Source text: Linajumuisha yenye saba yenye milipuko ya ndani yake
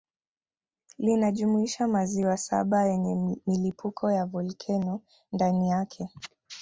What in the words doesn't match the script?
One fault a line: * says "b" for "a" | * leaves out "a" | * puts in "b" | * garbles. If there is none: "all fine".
* says "maziwa" for "yenye"
* puts in "volkeno"